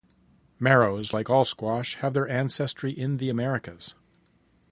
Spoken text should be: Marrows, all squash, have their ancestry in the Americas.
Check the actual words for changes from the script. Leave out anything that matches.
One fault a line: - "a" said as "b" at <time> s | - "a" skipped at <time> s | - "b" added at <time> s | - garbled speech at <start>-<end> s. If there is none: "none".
- "like" added at 1.1 s